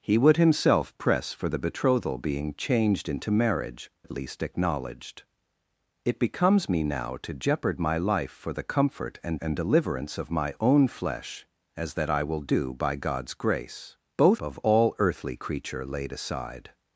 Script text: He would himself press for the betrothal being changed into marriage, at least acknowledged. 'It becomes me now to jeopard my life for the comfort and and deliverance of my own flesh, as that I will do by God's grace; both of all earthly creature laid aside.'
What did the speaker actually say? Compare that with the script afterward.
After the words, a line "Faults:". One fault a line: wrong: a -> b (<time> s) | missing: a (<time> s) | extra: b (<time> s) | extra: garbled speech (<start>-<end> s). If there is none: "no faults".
He would himself press for the betrothal being changed into marriage, at least acknowledged. 'It becomes me now to jeopard my life for the comfort and and deliverance of my own flesh, as that I will do by God's grace; both of all earthly creature laid aside.'
Faults:
no faults